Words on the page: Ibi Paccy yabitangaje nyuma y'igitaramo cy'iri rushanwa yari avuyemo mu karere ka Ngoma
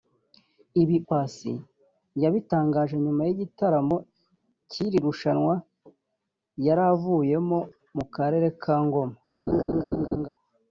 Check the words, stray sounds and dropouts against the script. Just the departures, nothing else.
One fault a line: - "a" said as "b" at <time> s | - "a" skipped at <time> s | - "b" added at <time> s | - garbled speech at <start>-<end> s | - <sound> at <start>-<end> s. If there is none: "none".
- laugh at 9.5-10.3 s